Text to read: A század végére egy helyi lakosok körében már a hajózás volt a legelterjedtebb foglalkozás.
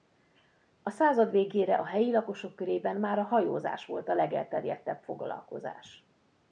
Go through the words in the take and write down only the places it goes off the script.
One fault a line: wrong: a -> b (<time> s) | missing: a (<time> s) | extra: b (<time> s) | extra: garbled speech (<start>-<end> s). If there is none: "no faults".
wrong: egy -> a (1.8 s)